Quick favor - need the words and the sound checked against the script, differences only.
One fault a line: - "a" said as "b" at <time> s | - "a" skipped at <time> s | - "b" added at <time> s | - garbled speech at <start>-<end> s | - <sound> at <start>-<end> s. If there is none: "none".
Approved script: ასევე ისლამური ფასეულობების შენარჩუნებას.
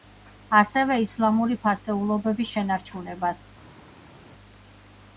none